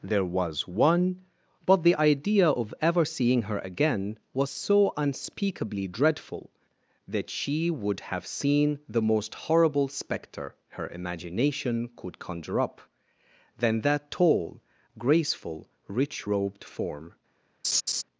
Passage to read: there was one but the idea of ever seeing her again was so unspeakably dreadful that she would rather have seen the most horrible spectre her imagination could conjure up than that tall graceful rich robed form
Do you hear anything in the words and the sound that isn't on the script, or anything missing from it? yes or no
yes